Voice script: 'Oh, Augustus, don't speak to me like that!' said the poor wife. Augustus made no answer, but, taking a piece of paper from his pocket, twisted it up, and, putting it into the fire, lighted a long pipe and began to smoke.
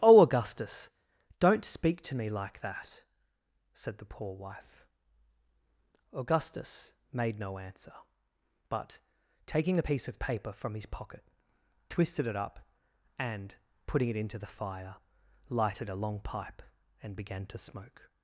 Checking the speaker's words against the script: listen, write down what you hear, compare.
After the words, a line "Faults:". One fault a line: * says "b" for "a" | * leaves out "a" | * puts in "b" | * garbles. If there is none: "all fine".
'Oh, Augustus, don't speak to me like that!' said the poor wife. Augustus made no answer, but, taking a piece of paper from his pocket, twisted it up, and, putting it into the fire, lighted a long pipe and began to smoke.
Faults:
all fine